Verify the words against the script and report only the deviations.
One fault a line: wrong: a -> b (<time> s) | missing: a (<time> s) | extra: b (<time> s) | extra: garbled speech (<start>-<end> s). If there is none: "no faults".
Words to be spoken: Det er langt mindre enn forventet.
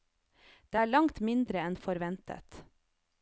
no faults